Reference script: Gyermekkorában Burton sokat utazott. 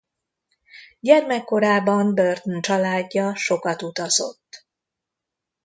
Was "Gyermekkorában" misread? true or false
false